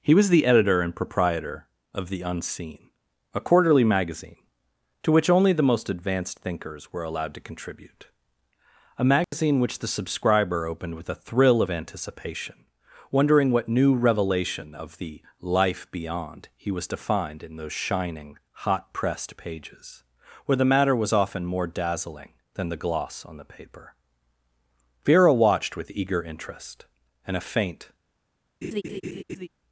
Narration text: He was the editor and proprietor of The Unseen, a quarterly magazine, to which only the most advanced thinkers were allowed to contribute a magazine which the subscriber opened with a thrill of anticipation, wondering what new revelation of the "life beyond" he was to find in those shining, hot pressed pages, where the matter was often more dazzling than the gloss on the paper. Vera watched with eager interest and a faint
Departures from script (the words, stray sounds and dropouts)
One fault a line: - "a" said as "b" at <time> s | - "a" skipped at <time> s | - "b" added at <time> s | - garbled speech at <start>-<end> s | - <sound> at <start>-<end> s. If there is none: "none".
- dropout at 9.2-9.3 s
- laugh at 28.6-29.5 s